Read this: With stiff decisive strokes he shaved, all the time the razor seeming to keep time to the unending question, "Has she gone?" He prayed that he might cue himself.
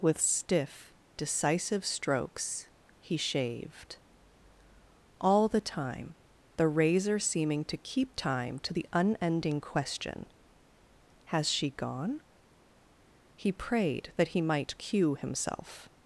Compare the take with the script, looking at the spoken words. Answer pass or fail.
pass